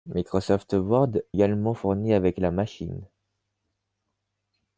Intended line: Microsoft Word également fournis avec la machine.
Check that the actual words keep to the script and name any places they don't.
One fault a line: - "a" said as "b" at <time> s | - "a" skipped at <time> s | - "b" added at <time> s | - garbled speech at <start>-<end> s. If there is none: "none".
none